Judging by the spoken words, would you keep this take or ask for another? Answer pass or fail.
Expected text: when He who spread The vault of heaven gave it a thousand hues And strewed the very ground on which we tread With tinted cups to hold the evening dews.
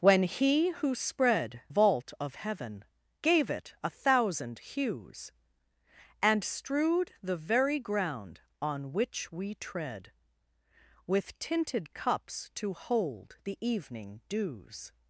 fail